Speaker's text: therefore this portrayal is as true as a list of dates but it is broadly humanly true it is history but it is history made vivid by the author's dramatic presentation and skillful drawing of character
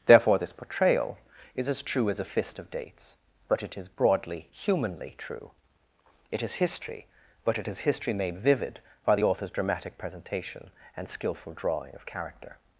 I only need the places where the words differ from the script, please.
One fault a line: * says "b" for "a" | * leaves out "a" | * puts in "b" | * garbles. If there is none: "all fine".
* says "fist" for "list"